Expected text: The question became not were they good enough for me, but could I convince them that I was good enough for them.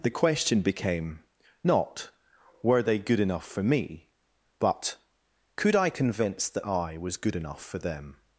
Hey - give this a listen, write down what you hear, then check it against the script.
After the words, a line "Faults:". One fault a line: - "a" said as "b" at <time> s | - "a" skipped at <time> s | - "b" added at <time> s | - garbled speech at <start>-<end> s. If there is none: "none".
The question became not were they good enough for me, but could I convince that I was good enough for them.
Faults:
- "them" skipped at 6.5 s